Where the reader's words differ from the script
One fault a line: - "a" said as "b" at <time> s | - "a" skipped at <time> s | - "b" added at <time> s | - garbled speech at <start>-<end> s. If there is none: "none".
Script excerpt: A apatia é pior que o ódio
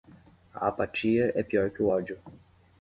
none